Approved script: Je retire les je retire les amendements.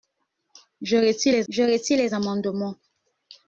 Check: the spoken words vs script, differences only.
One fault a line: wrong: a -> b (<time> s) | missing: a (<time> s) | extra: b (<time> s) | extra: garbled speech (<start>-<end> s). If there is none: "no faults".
no faults